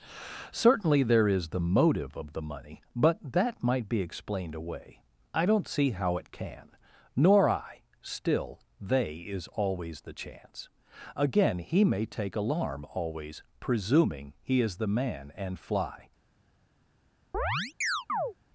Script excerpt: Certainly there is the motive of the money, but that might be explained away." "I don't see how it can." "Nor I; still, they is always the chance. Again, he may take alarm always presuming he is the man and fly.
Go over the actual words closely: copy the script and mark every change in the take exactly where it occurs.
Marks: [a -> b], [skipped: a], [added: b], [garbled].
Certainly there is the motive of the money, but that might be explained away." "I don't see how it can." "Nor I; still, they is always the chance. Again, he may take alarm always presuming he is the man and fly.